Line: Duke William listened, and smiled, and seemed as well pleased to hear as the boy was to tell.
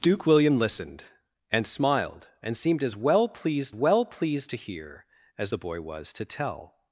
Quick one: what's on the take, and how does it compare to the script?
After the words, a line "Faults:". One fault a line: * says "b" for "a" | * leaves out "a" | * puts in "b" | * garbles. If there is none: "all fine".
Duke William listened, and smiled, and seemed as well pleased well pleased to hear as the boy was to tell.
Faults:
* puts in "well pleased"